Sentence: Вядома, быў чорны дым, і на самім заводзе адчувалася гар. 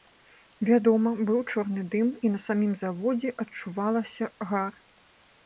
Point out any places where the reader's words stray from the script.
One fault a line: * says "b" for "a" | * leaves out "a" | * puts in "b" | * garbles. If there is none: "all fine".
all fine